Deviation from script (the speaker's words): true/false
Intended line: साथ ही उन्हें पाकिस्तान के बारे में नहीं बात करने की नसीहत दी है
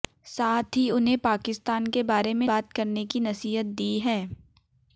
true